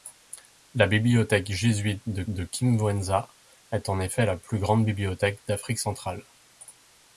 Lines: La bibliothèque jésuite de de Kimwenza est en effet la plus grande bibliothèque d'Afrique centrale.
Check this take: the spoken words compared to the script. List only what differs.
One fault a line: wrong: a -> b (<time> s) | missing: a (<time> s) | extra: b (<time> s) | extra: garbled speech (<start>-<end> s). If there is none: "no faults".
no faults